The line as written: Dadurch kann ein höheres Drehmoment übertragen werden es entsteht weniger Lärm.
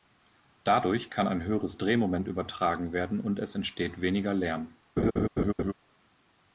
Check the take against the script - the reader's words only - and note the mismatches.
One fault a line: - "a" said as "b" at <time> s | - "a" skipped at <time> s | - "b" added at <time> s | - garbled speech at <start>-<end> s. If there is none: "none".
- "und" added at 3.2 s